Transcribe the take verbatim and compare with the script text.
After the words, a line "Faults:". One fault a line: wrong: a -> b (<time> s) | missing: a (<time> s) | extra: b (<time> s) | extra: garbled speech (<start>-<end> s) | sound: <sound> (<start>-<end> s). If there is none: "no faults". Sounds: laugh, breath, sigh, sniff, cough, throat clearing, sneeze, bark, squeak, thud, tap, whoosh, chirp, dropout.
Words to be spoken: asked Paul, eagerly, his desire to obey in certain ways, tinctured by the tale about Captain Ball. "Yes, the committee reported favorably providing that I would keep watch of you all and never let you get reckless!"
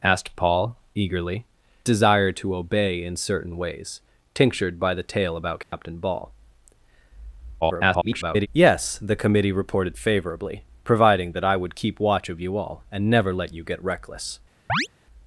asked Paul, eagerly, desire to obey in certain ways, tinctured by the tale about Captain Ball. [garbled] "Yes, the committee reported favorably providing that I would keep watch of you all and never let you get reckless!"
Faults:
missing: his (1.4 s)
sound: dropout (5.6-5.7 s)
extra: garbled speech (7.6-8.5 s)
sound: chirp (14.7-14.9 s)